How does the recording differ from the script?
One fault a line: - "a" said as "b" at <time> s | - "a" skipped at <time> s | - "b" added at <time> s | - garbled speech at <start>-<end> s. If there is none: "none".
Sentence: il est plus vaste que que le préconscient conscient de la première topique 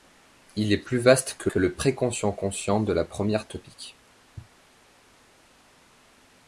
none